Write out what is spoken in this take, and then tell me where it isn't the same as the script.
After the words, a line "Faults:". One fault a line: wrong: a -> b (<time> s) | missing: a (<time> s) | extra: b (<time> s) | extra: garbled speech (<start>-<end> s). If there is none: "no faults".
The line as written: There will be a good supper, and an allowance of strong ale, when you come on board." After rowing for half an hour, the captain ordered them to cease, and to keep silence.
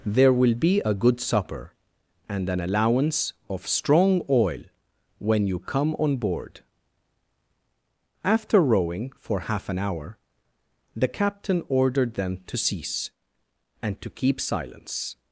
There will be a good supper, and an allowance of strong oil, when you come on board." After rowing for half an hour, the captain ordered them to cease, and to keep silence.
Faults:
wrong: ale -> oil (4.3 s)